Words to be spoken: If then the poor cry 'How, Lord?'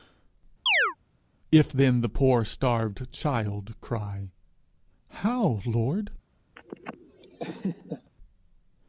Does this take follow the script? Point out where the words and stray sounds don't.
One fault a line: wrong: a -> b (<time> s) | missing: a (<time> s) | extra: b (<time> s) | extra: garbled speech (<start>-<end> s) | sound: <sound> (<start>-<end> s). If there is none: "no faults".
sound: chirp (0.7-1.0 s)
extra: starved child (2.4 s)
sound: laugh (6.6-8.1 s)